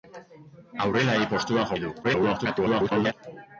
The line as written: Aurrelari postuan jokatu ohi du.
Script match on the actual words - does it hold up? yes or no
no